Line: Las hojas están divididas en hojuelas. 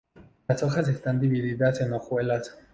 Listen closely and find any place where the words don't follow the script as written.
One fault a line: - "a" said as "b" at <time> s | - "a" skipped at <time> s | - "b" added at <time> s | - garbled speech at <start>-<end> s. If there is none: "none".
none